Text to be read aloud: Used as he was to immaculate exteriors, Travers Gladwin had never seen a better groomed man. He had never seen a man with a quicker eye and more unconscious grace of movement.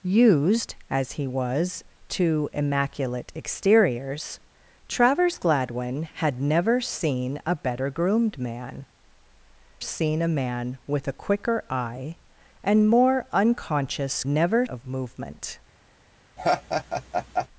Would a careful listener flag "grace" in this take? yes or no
yes